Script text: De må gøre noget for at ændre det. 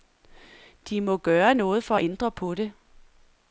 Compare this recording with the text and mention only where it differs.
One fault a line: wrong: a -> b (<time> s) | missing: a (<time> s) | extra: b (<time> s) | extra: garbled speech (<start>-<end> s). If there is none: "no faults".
extra: på (2.3 s)